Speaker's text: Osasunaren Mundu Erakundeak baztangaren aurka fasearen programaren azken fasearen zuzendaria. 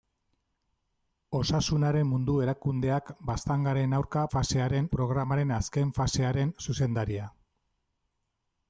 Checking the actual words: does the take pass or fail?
pass